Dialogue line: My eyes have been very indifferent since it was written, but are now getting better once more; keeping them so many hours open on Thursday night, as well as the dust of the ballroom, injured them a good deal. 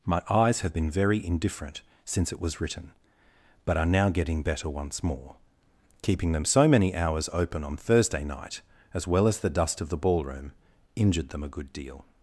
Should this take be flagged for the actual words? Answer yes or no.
no